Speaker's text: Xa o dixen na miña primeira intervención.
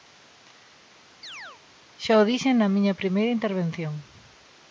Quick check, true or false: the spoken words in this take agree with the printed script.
true